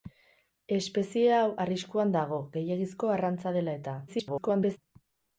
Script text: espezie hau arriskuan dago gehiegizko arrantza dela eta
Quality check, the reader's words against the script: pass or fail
fail